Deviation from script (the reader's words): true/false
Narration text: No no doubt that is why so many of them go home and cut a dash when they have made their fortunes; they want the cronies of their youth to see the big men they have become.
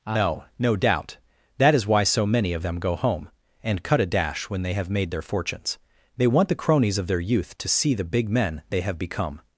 false